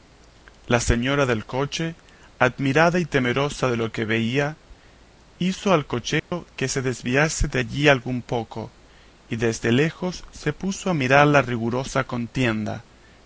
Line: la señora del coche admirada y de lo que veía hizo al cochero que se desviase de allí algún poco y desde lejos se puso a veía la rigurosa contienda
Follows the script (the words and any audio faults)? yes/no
no